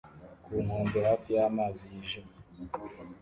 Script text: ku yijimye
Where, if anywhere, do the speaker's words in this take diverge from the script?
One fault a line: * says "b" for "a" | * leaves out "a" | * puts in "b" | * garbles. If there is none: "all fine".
* puts in "nkombe hafi y'amazi"